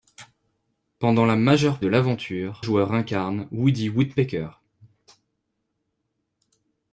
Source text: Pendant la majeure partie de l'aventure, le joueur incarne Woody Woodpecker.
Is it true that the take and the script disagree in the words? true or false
true